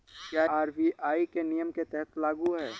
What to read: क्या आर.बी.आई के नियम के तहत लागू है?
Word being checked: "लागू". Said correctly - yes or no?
yes